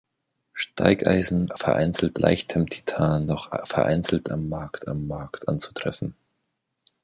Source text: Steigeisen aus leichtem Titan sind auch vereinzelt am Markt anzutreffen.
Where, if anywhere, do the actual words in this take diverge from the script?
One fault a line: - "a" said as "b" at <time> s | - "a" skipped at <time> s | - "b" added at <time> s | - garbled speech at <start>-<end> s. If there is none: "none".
- "aus" said as "vereinzelt" at 1.6 s
- "sind" skipped at 3.3 s
- "am Markt" added at 4.9 s